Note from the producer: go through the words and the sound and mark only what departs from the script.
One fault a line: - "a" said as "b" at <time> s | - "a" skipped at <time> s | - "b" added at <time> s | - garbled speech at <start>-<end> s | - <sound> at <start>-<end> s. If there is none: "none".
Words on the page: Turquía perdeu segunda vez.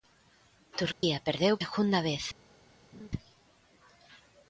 - dropout at 0.9-1.0 s
- laugh at 2.9-3.1 s